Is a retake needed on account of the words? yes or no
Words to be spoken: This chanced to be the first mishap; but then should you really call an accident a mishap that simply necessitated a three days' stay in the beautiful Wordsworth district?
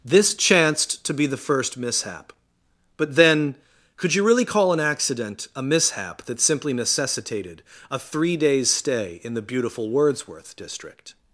yes